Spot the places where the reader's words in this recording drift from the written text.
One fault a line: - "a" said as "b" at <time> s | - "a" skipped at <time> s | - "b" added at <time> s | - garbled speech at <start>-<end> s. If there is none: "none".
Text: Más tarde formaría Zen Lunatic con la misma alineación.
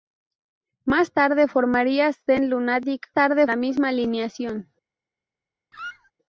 - "con" said as "tarde" at 3.1 s